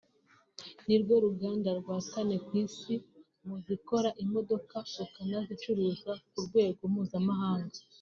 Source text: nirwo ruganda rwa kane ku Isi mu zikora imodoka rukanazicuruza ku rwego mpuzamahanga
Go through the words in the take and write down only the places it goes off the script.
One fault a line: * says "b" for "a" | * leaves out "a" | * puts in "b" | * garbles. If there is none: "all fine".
all fine